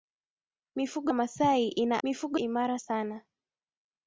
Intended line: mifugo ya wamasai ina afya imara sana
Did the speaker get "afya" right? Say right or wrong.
wrong